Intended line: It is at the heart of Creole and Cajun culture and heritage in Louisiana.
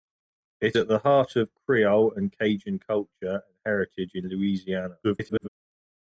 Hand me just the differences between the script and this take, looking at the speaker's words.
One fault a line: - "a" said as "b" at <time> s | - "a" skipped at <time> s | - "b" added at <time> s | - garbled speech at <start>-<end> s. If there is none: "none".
- "is" skipped at 0.8 s
- garbled speech at 5.0-5.5 s